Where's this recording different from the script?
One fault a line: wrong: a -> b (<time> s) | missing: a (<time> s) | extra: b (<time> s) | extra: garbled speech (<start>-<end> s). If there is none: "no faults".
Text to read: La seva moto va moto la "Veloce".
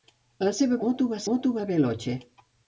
no faults